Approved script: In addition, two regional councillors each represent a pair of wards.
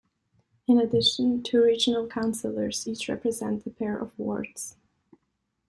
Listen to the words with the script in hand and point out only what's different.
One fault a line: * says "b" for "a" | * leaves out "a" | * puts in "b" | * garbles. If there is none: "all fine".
all fine